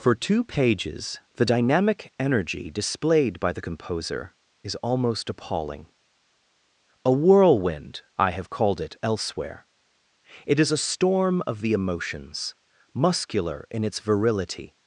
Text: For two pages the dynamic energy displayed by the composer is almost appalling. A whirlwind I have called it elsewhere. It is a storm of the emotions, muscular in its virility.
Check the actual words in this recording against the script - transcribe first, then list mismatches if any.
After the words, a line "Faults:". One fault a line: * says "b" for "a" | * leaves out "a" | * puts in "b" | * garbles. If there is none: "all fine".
For two pages the dynamic energy displayed by the composer is almost appalling. A whirlwind I have called it elsewhere. It is a storm of the emotions, muscular in its virility.
Faults:
all fine